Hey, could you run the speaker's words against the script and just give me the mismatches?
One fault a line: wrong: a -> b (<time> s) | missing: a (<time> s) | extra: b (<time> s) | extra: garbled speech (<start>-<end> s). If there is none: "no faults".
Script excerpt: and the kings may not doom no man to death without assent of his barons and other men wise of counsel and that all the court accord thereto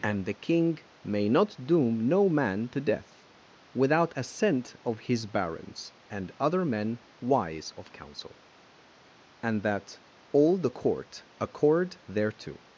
wrong: kings -> king (0.3 s)